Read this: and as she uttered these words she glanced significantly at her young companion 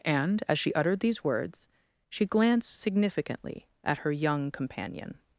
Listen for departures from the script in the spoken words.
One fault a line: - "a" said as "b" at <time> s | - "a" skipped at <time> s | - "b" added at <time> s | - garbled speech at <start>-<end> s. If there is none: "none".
none